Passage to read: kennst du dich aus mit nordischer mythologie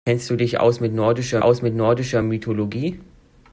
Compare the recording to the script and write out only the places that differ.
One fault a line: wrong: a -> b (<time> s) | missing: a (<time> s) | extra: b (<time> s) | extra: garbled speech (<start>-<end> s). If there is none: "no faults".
extra: aus mit nordischer (1.4 s)